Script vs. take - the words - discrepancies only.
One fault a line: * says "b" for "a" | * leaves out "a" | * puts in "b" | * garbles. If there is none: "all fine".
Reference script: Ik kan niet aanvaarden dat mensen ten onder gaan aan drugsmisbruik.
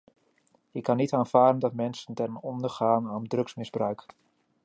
all fine